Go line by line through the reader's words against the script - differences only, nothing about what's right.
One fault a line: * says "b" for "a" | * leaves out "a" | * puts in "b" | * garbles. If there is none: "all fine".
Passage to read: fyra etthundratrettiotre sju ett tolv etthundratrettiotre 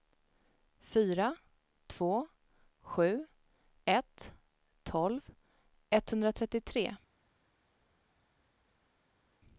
* says "två" for "etthundratrettiotre"